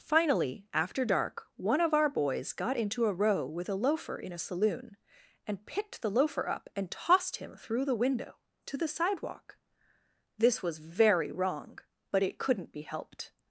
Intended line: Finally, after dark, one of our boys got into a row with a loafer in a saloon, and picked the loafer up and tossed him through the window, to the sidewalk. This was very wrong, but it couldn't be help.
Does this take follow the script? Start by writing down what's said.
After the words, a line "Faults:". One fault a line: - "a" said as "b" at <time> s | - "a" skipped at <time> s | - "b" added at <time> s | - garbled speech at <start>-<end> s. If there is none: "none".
Finally, after dark, one of our boys got into a row with a loafer in a saloon, and picked the loafer up and tossed him through the window, to the sidewalk. This was very wrong, but it couldn't be helped.
Faults:
- "help" said as "helped" at 12.8 s